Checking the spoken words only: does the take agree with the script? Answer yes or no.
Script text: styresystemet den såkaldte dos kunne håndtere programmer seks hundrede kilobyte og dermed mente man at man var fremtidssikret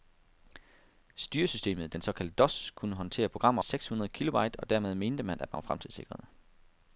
yes